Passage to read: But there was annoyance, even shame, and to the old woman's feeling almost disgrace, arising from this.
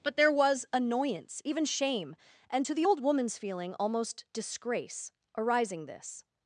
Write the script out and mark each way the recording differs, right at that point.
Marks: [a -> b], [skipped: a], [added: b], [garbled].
But there was annoyance, even shame, and to the old woman's feeling almost disgrace, arising [skipped: from] this.